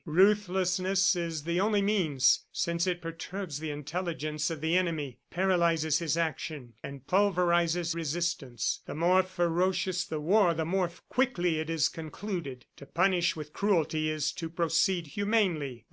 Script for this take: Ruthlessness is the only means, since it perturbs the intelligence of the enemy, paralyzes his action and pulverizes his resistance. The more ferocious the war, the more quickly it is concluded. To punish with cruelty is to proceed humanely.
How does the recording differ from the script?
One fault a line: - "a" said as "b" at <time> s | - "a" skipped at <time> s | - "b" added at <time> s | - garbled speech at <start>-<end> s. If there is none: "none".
- "his" skipped at 7.9 s